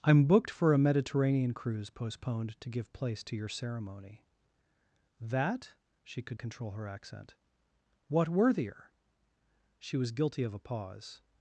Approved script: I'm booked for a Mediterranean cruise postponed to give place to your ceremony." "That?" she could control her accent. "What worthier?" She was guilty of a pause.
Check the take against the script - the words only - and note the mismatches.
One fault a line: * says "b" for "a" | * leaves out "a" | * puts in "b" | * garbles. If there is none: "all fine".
all fine